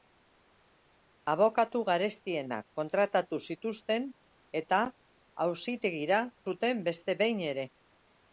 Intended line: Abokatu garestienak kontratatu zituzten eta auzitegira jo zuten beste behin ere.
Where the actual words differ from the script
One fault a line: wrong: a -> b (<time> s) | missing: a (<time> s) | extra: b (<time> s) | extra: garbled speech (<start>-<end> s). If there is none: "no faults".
missing: jo (6.2 s)